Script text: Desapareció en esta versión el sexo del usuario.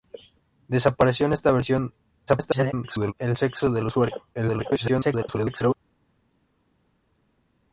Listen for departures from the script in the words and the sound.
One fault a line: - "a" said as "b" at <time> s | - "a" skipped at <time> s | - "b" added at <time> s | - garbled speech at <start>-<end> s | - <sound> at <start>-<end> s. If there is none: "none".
- garbled speech at 2.3-3.1 s
- garbled speech at 4.3-5.7 s